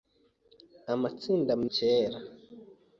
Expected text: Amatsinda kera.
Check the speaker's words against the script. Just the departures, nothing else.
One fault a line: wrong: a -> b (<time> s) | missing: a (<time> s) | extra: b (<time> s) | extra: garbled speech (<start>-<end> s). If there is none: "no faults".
no faults